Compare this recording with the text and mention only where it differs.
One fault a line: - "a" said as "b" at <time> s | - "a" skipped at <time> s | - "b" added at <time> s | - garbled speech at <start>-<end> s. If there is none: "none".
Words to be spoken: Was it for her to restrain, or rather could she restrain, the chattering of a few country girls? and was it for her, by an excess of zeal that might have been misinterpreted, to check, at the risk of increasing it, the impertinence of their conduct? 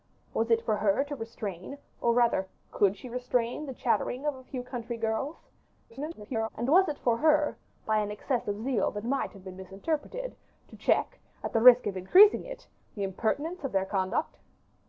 - garbled speech at 5.9-6.5 s